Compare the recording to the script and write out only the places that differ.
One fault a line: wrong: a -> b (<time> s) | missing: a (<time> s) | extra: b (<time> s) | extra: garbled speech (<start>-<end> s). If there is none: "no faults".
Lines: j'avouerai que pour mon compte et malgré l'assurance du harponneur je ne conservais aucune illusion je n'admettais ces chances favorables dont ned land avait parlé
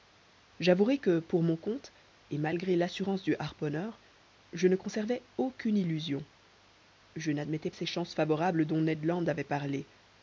no faults